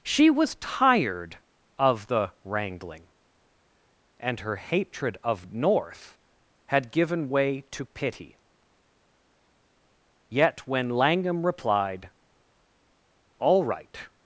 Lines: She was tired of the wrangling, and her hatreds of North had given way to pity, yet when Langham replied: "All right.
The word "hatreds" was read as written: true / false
false